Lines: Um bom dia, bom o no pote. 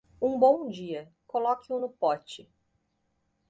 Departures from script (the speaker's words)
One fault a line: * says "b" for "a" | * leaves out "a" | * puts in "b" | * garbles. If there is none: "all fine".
* says "coloque" for "bom"